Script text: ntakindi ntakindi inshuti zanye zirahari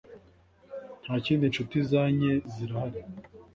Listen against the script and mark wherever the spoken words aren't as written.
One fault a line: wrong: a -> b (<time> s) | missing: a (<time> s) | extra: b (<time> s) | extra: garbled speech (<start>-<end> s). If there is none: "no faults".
missing: ntakindi (1.4 s)